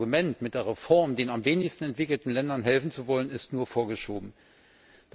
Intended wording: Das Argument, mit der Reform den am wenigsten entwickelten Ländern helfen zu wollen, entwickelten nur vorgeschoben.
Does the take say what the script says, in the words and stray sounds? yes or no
no